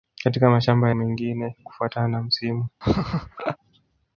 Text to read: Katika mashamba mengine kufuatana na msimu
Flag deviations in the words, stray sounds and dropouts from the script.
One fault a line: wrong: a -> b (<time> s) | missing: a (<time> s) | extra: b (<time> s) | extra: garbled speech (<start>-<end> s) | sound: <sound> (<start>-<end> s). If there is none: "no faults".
sound: laugh (2.8-3.6 s)